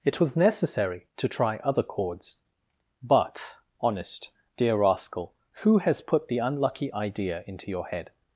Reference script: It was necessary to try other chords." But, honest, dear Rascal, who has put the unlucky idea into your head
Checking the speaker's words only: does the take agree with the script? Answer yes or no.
yes